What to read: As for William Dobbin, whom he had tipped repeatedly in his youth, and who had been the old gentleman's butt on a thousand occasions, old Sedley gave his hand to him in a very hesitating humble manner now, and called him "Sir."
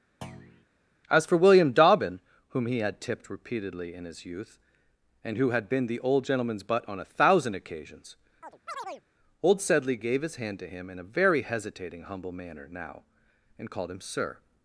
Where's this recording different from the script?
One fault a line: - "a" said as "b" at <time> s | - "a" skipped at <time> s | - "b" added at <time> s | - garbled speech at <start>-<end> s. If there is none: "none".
none